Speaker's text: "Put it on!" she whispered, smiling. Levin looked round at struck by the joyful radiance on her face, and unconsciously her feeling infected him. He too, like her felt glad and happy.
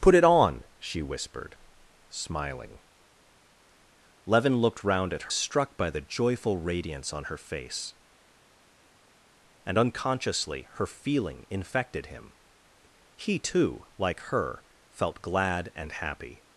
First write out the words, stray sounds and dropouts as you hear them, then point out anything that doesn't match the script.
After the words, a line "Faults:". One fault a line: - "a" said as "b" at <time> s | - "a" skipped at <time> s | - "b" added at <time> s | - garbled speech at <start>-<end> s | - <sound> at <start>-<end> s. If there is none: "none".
"Put it on!" she whispered, smiling. Levin looked round at struck by the joyful radiance on her face, and unconsciously her feeling infected him. He too, like her felt glad and happy.
Faults:
none